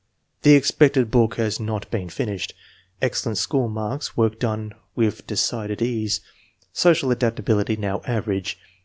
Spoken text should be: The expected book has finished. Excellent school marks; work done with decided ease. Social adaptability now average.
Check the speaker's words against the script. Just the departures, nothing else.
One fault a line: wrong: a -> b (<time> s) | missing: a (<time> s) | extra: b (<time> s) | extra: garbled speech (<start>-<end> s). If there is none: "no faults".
extra: not been (1.6 s)